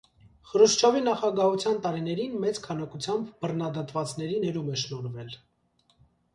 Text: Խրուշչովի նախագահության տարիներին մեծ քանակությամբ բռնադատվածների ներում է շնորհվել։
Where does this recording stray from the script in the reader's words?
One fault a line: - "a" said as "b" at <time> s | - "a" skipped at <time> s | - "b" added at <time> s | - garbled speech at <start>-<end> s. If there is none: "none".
none